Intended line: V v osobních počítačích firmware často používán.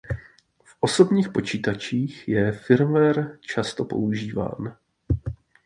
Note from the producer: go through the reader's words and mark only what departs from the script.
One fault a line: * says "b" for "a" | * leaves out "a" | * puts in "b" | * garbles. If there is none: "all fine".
* leaves out "v"
* puts in "je"